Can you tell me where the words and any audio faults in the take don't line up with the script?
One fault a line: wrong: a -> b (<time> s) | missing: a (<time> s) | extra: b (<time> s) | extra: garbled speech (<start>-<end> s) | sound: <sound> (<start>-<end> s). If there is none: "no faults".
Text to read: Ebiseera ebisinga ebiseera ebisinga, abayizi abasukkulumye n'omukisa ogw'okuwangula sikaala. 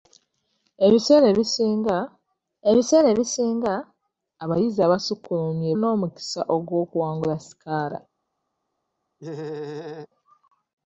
sound: laugh (9.2-10.1 s)